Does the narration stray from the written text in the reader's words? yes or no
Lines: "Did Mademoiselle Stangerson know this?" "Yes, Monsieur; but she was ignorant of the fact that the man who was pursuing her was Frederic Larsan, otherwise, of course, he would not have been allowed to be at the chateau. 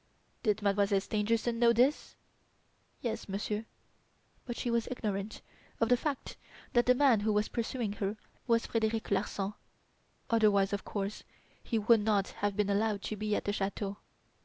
no